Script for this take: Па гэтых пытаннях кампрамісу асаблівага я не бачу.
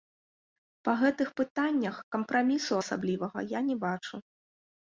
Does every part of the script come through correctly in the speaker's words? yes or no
yes